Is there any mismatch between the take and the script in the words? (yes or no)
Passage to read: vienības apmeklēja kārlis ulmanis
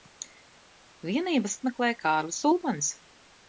no